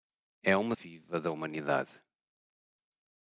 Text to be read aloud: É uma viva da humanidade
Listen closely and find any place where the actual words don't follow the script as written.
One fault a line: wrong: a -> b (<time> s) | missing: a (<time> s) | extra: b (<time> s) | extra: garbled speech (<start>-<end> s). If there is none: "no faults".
no faults